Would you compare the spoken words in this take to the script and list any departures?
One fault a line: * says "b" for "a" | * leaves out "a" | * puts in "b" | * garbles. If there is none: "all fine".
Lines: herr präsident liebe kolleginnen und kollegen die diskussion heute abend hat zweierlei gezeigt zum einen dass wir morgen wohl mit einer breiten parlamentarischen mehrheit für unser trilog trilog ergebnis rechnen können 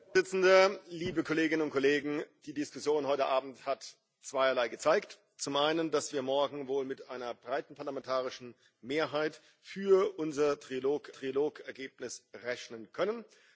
all fine